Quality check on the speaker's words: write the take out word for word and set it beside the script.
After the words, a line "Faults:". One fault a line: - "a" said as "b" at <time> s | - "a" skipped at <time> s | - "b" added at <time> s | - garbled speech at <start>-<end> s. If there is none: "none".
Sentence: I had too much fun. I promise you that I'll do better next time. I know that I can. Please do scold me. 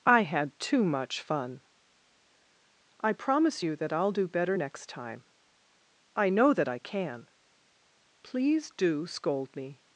I had too much fun. I promise you that I'll do better next time. I know that I can. Please do scold me.
Faults:
none